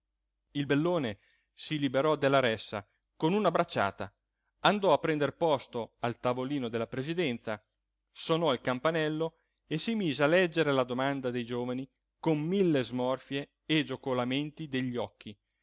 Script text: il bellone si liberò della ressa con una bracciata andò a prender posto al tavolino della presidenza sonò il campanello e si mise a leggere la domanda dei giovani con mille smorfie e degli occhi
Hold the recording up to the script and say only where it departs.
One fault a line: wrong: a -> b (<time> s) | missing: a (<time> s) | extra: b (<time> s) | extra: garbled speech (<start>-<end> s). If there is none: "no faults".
extra: giocolamenti (13.8 s)